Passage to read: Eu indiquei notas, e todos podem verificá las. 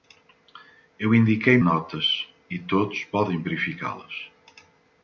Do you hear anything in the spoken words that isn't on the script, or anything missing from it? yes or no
no